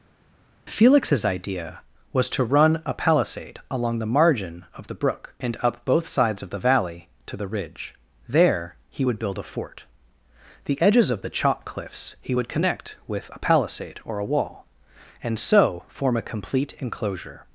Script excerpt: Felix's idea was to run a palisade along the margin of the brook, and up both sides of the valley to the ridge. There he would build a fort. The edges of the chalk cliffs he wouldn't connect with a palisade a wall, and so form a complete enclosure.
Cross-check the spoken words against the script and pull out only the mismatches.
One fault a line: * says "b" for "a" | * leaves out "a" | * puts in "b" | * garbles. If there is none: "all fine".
* says "would" for "wouldn't"
* puts in "or"